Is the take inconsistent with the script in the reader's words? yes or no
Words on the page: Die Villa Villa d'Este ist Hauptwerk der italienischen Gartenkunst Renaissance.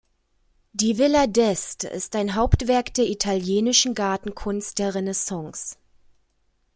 yes